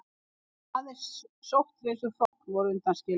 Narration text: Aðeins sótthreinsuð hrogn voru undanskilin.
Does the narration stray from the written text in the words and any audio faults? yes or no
yes